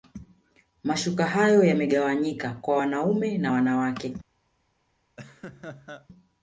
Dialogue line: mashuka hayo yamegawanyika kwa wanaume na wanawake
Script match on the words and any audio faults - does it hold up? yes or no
no